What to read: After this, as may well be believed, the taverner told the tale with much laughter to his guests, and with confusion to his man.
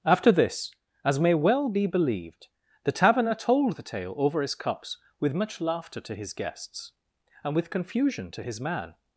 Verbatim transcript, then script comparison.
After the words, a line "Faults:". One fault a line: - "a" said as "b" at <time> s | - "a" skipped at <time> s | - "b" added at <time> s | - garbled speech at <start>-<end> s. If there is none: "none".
After this, as may well be believed, the taverner told the tale over his cups with much laughter to his guests, and with confusion to his man.
Faults:
- "over his cups" added at 4.2 s